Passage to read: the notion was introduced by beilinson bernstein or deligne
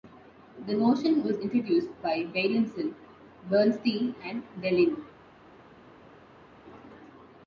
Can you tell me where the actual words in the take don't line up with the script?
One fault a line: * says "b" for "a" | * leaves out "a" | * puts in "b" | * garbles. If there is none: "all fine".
* says "and" for "or"